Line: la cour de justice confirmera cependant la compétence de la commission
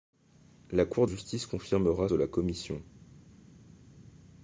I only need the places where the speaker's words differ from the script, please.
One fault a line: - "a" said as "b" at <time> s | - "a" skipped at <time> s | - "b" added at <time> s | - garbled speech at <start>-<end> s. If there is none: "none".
- "de" skipped at 1.1 s
- "cependant la compétence" skipped at 2.1 s